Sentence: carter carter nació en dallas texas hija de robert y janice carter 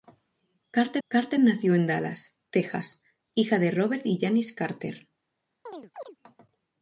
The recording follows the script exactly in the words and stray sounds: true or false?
false